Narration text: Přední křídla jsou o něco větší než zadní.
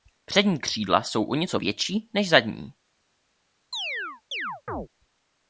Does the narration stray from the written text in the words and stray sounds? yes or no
yes